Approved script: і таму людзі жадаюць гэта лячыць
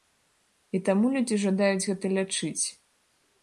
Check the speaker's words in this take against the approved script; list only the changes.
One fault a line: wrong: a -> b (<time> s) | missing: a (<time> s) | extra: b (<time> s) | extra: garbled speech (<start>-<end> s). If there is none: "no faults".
no faults